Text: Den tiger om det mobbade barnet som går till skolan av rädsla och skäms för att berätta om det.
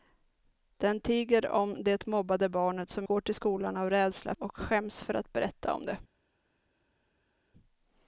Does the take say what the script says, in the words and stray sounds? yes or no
yes